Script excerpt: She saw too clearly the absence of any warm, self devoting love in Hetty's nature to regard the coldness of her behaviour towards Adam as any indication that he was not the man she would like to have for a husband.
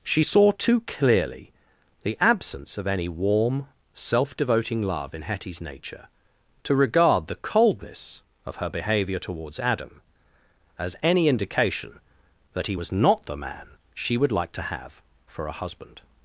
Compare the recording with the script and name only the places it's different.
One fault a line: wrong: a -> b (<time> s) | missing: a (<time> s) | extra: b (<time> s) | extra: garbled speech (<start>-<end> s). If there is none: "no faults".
no faults